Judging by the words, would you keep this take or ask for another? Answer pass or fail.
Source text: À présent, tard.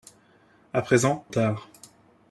pass